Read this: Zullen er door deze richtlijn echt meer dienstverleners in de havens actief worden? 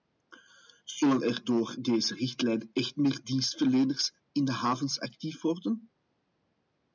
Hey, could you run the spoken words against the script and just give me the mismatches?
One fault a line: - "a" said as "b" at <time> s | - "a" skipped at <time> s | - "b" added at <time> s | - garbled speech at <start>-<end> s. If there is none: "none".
none